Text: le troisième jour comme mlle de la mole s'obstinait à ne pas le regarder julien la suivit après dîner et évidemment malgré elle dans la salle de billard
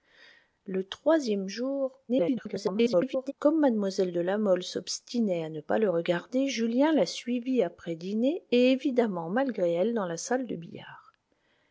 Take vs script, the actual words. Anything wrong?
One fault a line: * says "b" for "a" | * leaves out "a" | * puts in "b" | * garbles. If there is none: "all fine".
* garbles